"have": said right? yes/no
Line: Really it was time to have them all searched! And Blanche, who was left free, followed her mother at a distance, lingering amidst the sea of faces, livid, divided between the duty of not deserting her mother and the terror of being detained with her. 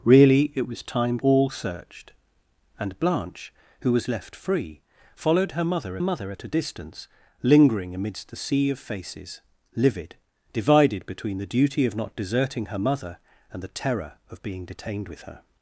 no